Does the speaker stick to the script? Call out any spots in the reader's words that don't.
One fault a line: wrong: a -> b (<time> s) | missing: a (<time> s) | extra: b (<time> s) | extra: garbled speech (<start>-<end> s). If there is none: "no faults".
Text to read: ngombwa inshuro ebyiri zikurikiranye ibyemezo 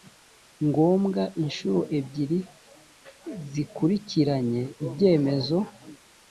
no faults